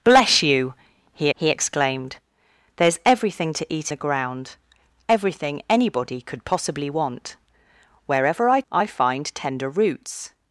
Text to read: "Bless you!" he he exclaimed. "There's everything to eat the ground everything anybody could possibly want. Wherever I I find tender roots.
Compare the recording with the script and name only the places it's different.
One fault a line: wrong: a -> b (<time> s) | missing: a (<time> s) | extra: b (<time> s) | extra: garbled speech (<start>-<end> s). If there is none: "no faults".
no faults